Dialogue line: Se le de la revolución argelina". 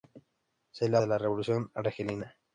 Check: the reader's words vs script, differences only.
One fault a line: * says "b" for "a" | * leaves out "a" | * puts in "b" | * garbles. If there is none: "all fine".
all fine